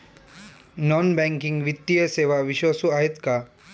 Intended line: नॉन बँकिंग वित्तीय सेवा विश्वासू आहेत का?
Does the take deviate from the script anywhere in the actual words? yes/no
no